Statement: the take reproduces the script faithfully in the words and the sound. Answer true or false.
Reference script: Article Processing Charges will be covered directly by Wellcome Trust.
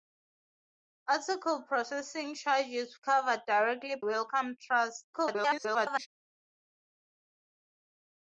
false